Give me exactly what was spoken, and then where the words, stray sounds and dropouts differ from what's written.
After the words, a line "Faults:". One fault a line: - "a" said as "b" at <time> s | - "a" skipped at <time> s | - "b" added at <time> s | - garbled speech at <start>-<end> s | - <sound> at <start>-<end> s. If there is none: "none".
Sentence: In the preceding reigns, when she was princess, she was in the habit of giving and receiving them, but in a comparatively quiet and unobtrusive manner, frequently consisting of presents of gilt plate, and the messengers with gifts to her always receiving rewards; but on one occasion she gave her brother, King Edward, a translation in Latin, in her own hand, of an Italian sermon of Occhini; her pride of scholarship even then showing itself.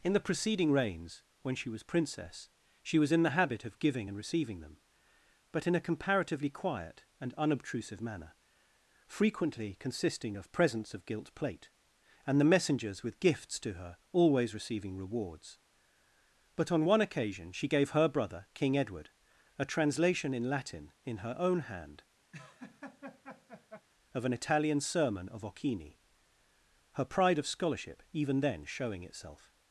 In the preceding reigns, when she was princess, she was in the habit of giving and receiving them, but in a comparatively quiet and unobtrusive manner, frequently consisting of presents of gilt plate, and the messengers with gifts to her always receiving rewards; but on one occasion she gave her brother, King Edward, a translation in Latin, in her own hand, of an Italian sermon of Occhini; her pride of scholarship even then showing itself.
Faults:
- laugh at 22.3-23.9 s